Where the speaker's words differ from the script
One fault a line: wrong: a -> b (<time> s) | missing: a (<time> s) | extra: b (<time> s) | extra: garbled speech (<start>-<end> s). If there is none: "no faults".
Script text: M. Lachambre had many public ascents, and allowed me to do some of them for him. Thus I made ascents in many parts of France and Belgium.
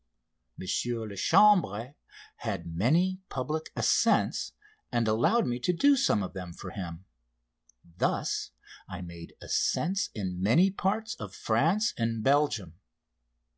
no faults